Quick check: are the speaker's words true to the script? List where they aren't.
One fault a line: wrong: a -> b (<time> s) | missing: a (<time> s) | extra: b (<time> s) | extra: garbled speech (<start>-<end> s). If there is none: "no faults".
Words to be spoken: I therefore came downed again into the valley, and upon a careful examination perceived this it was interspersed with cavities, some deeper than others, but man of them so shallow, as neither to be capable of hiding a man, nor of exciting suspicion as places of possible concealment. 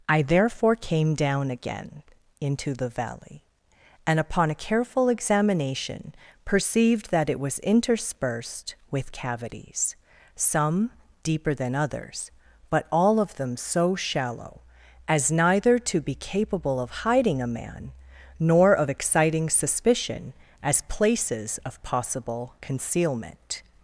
wrong: downed -> down (1.1 s)
wrong: this -> that (7.1 s)
wrong: man -> all (12.9 s)